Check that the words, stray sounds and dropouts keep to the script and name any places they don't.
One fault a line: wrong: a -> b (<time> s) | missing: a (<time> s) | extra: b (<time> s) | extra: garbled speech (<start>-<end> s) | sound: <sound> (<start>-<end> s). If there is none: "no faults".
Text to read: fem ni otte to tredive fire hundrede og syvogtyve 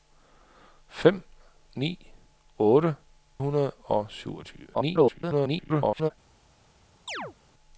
missing: to tredive fire (3.0 s)
extra: garbled speech (4.7-6.1 s)
sound: chirp (7.1-7.3 s)